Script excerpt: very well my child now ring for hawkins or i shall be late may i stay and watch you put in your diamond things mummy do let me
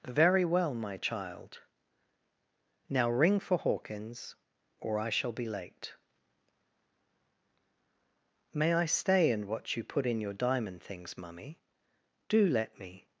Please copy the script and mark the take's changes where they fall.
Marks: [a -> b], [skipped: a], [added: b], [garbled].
very well my child now ring for hawkins or i shall be late may i stay and watch you put in your diamond things mummy do let me